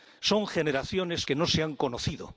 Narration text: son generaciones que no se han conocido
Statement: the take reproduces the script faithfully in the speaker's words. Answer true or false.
true